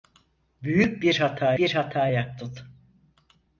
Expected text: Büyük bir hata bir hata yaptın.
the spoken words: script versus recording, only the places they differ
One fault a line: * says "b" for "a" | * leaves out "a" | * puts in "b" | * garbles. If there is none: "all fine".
all fine